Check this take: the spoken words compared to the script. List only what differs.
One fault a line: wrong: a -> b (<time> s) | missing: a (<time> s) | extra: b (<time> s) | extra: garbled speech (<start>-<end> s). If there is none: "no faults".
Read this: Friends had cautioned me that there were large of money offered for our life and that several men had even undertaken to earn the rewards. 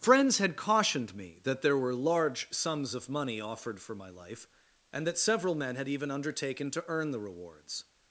extra: sums (2.5 s)
wrong: our -> my (3.9 s)